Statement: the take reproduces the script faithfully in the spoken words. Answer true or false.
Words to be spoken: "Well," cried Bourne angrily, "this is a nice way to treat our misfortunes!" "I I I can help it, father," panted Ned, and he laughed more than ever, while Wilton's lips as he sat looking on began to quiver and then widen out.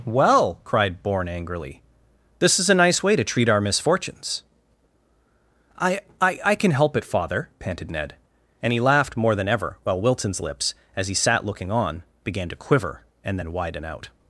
true